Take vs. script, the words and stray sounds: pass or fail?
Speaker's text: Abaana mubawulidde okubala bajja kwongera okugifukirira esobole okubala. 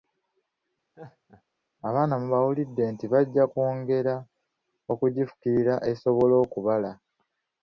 fail